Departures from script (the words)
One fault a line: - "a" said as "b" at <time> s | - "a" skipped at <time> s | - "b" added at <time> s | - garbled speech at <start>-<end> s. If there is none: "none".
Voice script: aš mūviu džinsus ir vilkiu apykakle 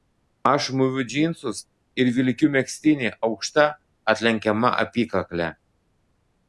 - "megztinį aukšta atlenkiama" added at 2.6 s